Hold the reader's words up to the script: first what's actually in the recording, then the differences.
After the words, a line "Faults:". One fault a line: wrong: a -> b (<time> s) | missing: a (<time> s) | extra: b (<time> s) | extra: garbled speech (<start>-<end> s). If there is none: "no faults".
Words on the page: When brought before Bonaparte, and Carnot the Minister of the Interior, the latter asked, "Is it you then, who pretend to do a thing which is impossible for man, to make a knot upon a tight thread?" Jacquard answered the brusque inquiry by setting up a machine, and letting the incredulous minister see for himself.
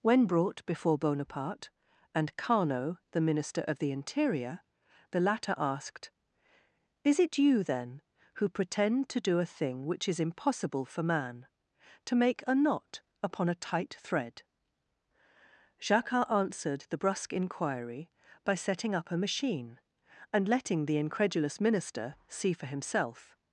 When brought before Bonaparte, and Carnot the Minister of the Interior, the latter asked, "Is it you then, who pretend to do a thing which is impossible for man, to make a knot upon a tight thread?" Jacquard answered the brusque inquiry by setting up a machine, and letting the incredulous minister see for himself.
Faults:
no faults